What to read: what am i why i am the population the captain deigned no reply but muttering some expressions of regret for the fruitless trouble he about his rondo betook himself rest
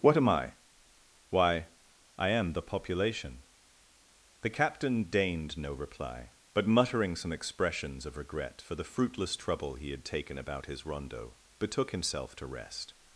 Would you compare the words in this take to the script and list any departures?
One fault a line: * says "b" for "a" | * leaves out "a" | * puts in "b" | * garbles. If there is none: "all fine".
* puts in "had taken"
* puts in "to"